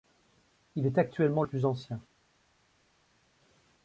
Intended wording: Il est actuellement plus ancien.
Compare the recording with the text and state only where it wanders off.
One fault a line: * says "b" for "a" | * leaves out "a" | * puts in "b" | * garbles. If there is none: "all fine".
all fine